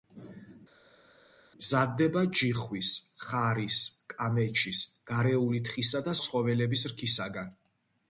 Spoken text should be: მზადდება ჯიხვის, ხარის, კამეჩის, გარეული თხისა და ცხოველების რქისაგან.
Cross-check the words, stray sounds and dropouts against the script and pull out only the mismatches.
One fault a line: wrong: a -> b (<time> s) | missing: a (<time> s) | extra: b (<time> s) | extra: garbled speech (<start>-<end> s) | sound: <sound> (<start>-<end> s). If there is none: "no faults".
no faults